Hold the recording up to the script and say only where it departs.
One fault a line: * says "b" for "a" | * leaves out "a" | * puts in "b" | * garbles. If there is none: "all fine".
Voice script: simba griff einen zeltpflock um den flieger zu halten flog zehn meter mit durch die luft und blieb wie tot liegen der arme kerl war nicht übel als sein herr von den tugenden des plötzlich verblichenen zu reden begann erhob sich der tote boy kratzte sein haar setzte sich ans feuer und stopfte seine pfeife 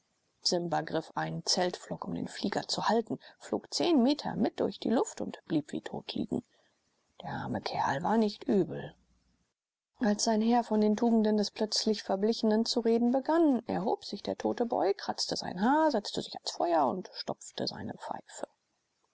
all fine